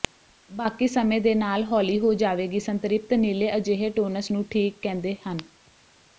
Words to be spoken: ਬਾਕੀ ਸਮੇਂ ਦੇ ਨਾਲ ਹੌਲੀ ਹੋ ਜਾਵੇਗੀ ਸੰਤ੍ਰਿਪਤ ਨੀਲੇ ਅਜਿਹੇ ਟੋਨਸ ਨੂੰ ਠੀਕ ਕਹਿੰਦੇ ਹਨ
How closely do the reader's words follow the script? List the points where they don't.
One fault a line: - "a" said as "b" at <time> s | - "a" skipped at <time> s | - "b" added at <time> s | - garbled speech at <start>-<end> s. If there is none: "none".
none